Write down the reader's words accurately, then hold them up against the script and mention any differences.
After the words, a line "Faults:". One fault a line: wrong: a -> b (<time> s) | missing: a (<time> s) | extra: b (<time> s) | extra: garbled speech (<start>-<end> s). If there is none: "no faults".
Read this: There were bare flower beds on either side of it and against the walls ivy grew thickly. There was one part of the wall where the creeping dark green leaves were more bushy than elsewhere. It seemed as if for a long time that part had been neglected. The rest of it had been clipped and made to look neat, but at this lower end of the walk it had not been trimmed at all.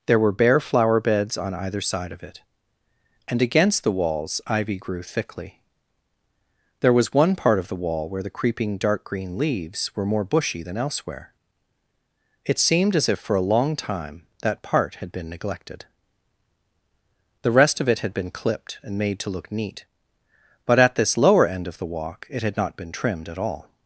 There were bare flower beds on either side of it and against the walls ivy grew thickly. There was one part of the wall where the creeping dark green leaves were more bushy than elsewhere. It seemed as if for a long time that part had been neglected. The rest of it had been clipped and made to look neat, but at this lower end of the walk it had not been trimmed at all.
Faults:
no faults